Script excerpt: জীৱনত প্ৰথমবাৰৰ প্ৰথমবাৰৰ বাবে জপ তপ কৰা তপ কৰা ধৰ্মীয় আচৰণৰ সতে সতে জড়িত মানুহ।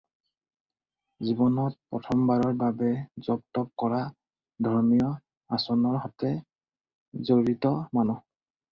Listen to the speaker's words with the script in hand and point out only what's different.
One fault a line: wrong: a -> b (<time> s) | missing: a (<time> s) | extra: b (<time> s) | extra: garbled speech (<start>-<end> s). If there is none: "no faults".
missing: প্ৰথমবাৰৰ (2.5 s)
missing: তপ কৰা (4.0 s)
missing: সতে (6.4 s)